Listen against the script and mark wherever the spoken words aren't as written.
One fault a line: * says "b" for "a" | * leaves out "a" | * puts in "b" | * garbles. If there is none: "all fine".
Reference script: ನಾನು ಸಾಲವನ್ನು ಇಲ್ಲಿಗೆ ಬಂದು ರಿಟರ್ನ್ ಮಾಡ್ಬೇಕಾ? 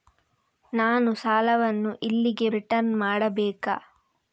* leaves out "ಬಂದು"